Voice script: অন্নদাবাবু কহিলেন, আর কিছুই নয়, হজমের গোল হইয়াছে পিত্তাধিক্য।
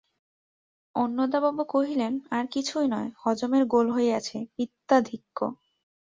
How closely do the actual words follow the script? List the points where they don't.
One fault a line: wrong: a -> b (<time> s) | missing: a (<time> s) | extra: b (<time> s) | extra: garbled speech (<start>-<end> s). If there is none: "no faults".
no faults